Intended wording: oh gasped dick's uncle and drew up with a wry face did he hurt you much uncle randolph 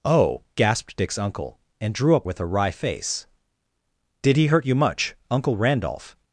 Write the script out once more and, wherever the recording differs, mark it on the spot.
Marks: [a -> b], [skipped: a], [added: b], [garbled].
oh gasped dick's uncle and drew up with a wry face did he hurt you much uncle randolph